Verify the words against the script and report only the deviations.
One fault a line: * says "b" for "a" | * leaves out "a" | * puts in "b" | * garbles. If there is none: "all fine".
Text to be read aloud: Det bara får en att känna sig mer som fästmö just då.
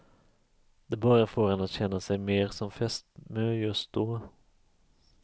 all fine